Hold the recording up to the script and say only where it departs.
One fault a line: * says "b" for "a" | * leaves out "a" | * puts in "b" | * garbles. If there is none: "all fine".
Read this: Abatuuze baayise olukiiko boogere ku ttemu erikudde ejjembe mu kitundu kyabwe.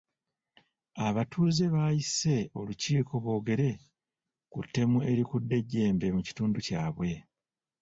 all fine